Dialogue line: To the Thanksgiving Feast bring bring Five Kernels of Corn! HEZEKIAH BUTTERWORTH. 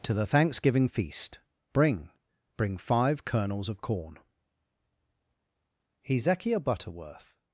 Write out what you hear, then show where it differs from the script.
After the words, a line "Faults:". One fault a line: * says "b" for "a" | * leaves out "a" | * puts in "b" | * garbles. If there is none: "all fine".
To the Thanksgiving Feast bring bring Five Kernels of Corn! HEZEKIAH BUTTERWORTH.
Faults:
all fine